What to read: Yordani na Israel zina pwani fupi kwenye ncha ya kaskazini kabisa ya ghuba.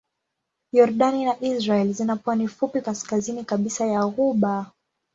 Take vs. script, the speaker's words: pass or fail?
fail